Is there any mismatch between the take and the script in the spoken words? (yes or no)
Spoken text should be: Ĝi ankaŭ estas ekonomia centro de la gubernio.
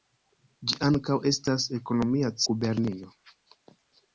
yes